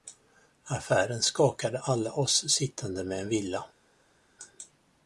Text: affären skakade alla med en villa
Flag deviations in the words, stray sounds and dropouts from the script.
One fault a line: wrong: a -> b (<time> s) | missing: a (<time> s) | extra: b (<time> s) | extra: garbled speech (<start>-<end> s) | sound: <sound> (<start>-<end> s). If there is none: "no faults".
extra: oss sittande (2.1 s)